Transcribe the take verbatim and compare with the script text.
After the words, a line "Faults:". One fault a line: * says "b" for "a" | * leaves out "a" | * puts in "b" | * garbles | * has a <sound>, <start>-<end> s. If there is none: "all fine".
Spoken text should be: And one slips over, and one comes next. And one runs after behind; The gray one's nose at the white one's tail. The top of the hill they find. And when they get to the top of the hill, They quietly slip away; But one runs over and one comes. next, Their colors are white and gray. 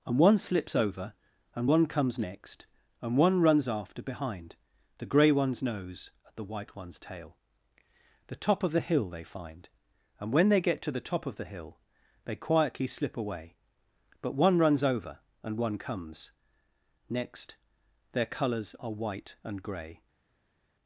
And one slips over, and one comes next. And one runs after behind; The gray one's nose at the white one's tail. The top of the hill they find. And when they get to the top of the hill, They quietly slip away; But one runs over and one comes. next, Their colors are white and gray.
Faults:
all fine